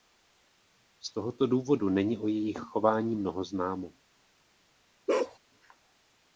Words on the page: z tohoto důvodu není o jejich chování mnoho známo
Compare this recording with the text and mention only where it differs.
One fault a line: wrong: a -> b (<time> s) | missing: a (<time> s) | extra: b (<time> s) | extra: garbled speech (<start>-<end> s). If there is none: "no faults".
no faults